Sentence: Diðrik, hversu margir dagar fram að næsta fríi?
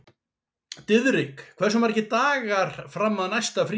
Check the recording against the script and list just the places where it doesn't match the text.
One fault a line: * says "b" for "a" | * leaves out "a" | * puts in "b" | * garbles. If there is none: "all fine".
all fine